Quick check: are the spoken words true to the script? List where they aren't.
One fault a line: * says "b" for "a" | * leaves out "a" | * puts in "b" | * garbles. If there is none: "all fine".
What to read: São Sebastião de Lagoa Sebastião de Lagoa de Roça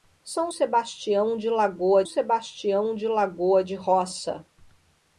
all fine